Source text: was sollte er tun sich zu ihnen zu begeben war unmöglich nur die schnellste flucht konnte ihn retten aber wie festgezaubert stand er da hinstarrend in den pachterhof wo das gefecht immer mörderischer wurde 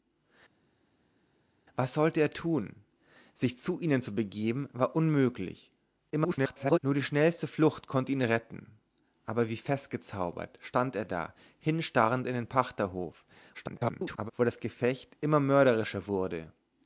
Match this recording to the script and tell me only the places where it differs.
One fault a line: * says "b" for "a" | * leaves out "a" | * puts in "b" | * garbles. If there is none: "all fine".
* garbles
* garbles